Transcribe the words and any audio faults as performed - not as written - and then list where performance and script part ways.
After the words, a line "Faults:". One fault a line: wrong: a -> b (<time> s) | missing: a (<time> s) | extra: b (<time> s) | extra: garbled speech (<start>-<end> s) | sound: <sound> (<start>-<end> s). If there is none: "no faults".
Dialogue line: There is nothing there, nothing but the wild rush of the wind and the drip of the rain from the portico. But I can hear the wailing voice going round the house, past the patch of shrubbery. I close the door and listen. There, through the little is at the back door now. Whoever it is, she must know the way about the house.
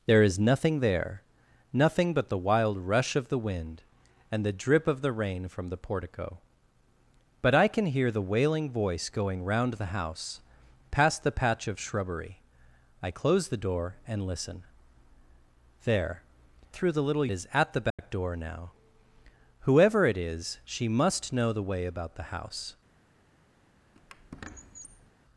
There is nothing there, nothing but the wild rush of the wind and the drip of the rain from the portico. But I can hear the wailing voice going round the house, past the patch of shrubbery. I close the door and listen. There, through the little is at the back door now. Whoever it is, she must know the way about the house.
Faults:
sound: dropout (17.9-18.0 s)
sound: squeak (24.0-25.1 s)